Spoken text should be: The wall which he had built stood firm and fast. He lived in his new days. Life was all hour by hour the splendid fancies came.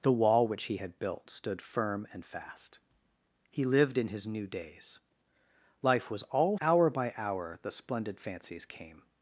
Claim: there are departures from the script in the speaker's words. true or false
false